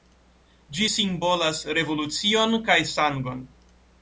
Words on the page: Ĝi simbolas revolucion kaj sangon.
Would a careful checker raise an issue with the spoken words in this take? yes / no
no